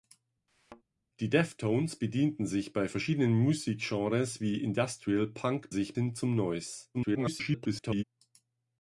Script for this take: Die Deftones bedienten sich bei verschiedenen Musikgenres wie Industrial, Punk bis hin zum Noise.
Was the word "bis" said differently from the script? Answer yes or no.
yes